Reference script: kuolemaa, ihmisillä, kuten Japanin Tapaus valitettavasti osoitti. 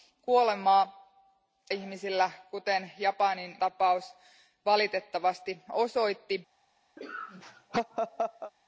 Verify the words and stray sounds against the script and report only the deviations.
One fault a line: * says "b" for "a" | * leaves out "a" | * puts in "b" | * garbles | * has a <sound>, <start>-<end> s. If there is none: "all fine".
* has a laugh, 7.0-8.5 s